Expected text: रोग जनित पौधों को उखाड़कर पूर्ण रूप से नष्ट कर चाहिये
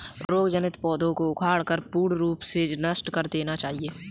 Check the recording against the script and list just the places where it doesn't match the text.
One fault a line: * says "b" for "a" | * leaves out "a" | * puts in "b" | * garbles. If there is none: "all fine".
* puts in "देना"